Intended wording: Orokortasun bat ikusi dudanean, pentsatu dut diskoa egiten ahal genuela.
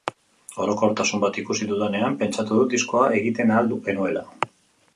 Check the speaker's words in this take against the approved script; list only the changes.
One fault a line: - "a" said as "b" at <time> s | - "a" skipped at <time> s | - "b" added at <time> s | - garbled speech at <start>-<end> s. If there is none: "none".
none